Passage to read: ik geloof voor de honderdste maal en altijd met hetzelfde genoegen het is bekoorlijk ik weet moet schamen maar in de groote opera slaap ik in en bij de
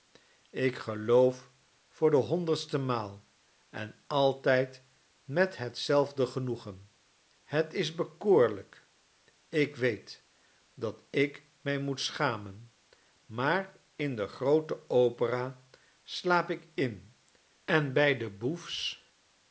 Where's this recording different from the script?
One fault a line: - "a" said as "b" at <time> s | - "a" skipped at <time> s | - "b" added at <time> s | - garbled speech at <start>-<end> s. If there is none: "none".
- "dat ik mij" added at 10.7 s